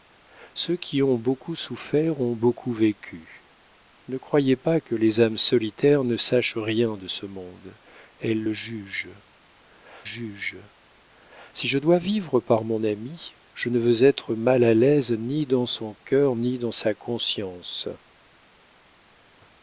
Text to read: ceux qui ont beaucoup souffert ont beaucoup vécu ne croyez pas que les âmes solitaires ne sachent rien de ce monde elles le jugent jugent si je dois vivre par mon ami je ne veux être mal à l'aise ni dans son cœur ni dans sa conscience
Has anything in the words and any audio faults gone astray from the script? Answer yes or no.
no